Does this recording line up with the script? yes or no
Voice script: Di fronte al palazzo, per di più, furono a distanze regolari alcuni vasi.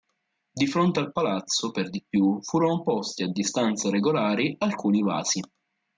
no